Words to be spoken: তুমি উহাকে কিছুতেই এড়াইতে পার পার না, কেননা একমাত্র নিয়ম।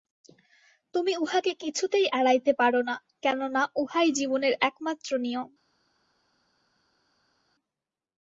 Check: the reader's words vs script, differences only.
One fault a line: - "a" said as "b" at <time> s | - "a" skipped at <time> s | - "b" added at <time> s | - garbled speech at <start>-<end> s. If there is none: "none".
- "পার" skipped at 2.7 s
- "উহাই জীবনের" added at 3.8 s